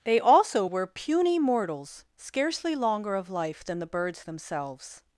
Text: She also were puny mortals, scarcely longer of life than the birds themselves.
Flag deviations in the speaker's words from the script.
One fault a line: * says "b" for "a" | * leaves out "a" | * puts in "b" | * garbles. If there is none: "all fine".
* says "They" for "She"